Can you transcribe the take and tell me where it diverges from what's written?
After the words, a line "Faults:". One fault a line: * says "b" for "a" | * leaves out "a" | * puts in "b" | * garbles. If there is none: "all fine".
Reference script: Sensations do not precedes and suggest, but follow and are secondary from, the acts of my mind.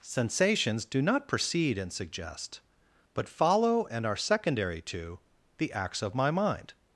Sensations do not precede and suggest, but follow and are secondary to, the acts of my mind.
Faults:
* says "precede" for "precedes"
* says "to" for "from"